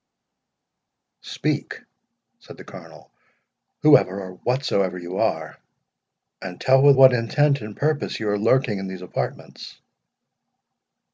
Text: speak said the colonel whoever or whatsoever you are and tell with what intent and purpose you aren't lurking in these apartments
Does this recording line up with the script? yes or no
no